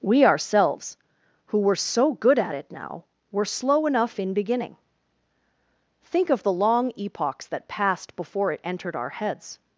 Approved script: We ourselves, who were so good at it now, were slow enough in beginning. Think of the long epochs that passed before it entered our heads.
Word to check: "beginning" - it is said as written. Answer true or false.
true